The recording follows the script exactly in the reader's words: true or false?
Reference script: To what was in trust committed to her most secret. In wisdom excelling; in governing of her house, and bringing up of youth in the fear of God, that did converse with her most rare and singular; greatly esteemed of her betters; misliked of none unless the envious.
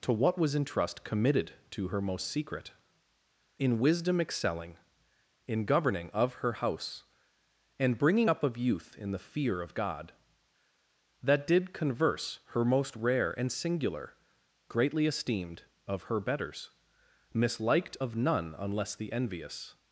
false